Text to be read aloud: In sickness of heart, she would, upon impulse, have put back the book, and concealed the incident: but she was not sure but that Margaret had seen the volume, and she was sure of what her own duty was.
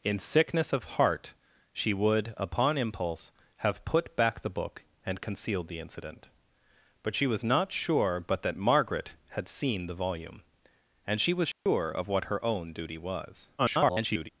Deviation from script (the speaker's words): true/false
true